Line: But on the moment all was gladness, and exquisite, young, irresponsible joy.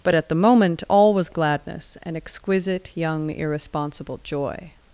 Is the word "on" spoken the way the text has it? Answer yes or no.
no